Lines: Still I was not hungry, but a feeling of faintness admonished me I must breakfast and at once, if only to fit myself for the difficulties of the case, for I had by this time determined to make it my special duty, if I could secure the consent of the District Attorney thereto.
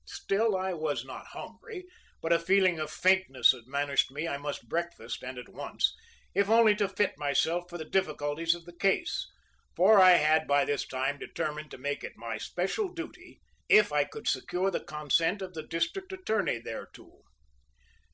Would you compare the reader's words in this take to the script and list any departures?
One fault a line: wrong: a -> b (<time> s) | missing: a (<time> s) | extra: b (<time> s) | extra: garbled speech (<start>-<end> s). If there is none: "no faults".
no faults